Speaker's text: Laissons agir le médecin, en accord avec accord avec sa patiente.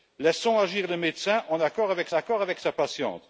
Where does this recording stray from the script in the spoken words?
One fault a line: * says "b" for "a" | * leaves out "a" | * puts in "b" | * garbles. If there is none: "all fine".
all fine